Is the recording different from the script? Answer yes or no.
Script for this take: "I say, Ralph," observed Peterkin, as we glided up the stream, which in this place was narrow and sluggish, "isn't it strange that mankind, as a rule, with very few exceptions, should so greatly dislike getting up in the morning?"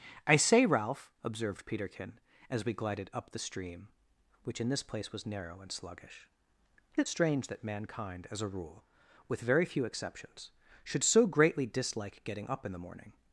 yes